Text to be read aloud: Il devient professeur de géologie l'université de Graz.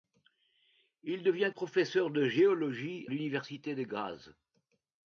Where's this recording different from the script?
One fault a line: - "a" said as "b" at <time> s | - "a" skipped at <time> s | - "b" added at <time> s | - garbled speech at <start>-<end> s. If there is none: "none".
none